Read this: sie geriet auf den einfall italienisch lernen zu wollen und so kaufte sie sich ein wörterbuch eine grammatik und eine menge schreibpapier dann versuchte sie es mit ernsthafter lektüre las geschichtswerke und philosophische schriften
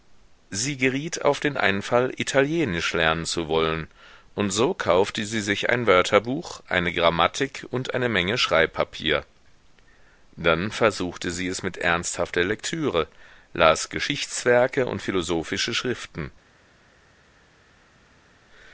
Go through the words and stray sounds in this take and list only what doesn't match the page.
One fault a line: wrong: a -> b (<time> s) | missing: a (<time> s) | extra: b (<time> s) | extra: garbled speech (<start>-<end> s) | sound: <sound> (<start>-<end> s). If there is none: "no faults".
no faults